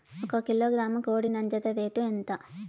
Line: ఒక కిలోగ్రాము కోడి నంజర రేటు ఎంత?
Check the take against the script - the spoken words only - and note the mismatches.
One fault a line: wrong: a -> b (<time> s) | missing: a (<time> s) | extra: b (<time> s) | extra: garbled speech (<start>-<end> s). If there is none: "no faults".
no faults